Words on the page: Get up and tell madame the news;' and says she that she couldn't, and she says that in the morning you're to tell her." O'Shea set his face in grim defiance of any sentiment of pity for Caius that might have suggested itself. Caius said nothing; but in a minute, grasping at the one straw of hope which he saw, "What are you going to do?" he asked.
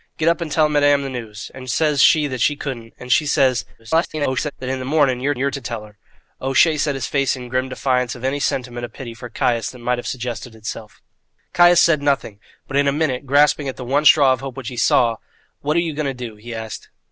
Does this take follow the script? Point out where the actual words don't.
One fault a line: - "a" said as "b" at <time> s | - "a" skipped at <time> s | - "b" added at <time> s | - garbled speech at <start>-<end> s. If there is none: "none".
- garbled speech at 3.8-4.5 s
- "you're" added at 5.4 s